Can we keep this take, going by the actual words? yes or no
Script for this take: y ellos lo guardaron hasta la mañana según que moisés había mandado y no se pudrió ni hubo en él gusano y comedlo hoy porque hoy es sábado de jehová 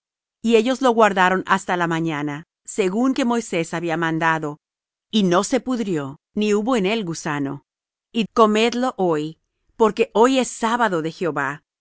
yes